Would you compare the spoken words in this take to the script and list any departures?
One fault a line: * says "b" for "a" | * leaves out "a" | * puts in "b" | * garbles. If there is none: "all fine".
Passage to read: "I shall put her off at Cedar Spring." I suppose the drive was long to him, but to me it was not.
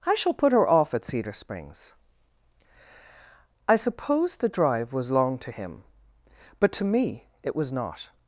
* says "Springs" for "Spring"